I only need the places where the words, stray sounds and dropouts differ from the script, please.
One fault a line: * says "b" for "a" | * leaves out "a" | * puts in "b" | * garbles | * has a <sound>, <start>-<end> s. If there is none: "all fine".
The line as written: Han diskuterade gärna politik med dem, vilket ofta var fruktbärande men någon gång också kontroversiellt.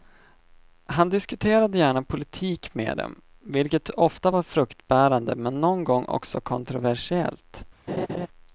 * has a laugh, 7.9-8.3 s